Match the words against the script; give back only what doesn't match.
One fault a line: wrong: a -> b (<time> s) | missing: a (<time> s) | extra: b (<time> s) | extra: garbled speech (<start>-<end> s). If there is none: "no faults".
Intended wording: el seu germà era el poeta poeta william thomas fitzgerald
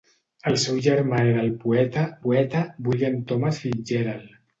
no faults